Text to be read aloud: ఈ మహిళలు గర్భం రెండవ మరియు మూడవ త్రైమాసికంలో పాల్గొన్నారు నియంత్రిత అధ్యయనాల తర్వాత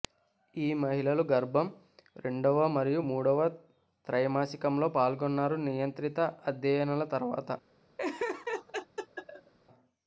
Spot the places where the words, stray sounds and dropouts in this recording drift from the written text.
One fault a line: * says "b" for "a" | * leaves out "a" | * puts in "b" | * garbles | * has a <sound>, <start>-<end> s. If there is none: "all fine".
* has a laugh, 8.0-9.5 s